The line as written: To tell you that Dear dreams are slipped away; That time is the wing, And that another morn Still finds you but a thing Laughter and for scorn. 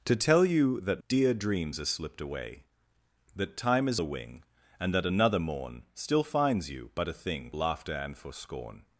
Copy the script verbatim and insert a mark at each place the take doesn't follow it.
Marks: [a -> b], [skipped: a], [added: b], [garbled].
To tell you that Dear dreams are slipped away; That time is the wing, And that another morn Still finds you but a thing Laughter and for scorn.